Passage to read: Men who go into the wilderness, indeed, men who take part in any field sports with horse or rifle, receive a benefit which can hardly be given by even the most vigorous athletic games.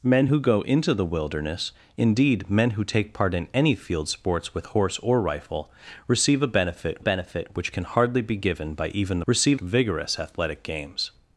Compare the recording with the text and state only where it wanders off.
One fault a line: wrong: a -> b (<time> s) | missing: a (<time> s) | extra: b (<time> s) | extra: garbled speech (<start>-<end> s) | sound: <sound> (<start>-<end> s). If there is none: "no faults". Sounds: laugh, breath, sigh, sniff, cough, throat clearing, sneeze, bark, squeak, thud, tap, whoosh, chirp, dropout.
extra: benefit (7.0 s)
wrong: most -> receive (9.3 s)